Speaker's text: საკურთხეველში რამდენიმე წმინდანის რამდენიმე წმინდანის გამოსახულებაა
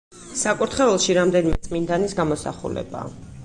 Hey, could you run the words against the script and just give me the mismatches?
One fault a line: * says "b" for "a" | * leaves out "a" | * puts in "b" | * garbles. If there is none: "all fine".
* leaves out "რამდენიმე წმინდანის"